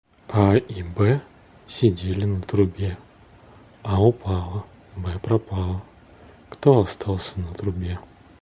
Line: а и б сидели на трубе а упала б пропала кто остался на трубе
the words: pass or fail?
pass